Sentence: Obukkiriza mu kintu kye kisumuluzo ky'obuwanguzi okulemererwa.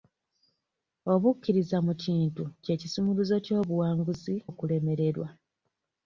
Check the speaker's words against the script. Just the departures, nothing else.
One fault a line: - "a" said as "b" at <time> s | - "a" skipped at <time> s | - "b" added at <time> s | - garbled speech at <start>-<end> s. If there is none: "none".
none